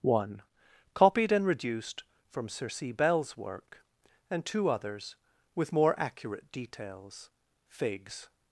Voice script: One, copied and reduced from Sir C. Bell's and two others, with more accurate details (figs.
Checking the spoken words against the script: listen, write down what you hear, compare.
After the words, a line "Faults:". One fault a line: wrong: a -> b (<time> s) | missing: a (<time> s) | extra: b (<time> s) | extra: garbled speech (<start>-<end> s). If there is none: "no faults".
One, copied and reduced from Sir C. Bell's work, and two others, with more accurate details (figs.
Faults:
extra: work (3.4 s)